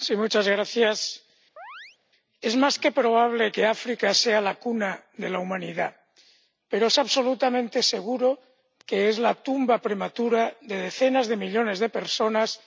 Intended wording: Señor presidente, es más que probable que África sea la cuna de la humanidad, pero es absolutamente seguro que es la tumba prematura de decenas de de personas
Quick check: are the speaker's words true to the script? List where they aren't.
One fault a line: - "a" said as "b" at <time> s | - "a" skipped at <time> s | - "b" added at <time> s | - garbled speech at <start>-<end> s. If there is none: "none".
- "millones" added at 11.4 s